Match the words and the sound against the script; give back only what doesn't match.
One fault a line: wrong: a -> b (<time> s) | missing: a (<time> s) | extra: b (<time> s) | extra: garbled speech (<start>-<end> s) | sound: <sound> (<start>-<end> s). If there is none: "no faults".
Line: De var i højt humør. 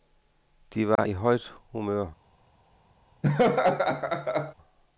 sound: dropout (1.0-1.0 s)
sound: laugh (3.2-4.5 s)